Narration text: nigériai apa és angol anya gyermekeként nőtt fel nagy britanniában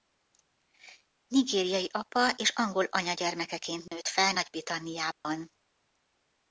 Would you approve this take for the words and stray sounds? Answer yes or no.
no